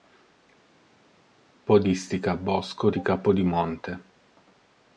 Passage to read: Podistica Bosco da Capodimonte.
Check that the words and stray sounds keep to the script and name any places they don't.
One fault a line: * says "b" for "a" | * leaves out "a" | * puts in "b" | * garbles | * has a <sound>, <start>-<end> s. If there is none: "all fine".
* says "di" for "da"